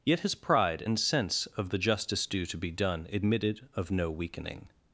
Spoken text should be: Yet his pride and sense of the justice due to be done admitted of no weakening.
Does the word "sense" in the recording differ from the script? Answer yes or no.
no